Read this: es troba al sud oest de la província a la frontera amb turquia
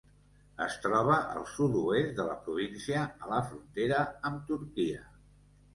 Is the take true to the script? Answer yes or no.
yes